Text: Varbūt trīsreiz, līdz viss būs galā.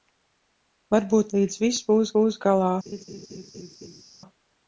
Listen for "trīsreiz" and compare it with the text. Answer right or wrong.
wrong